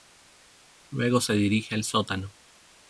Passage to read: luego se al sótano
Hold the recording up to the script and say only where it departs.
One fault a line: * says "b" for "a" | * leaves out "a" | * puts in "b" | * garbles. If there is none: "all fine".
* puts in "dirige"